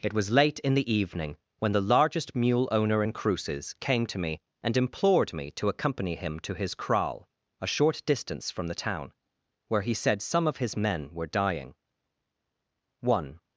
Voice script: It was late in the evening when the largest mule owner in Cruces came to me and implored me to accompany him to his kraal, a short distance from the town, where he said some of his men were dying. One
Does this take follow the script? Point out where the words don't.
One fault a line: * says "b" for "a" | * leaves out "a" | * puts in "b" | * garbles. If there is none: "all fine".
all fine